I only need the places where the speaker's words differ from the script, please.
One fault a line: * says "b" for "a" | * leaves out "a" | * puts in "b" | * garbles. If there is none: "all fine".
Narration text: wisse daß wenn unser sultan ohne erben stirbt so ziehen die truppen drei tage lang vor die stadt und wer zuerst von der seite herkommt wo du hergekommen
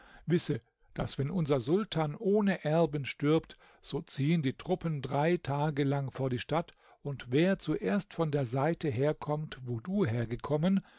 all fine